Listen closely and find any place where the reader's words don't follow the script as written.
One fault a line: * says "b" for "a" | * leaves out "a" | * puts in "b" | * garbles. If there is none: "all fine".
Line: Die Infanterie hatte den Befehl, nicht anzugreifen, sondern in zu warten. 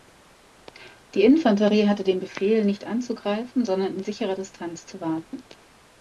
* puts in "sicherer Distanz"